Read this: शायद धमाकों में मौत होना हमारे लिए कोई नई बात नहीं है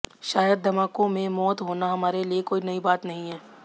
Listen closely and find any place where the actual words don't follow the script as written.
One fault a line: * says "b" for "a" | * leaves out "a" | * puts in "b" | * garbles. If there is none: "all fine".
all fine